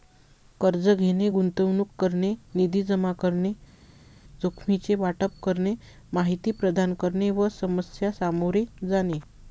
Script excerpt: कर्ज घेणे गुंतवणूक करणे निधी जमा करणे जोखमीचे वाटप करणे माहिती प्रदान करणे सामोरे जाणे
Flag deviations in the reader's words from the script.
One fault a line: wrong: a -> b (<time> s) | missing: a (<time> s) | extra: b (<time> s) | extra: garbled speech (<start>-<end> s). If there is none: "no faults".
extra: व समस्या (7.3 s)